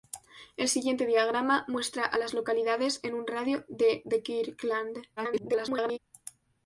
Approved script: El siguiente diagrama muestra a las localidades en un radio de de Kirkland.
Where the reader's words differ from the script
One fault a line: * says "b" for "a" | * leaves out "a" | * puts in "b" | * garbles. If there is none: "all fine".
* garbles